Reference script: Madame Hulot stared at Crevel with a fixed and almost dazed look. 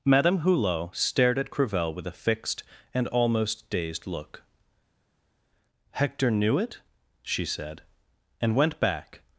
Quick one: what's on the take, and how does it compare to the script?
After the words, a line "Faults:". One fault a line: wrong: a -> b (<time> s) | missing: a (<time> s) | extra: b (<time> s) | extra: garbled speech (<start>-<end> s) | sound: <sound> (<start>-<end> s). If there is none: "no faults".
Madame Hulot stared at Crevel with a fixed and almost dazed look. "Hector knew it?" she said. "And went back
Faults:
extra: Hector knew it she said And went back (5.9 s)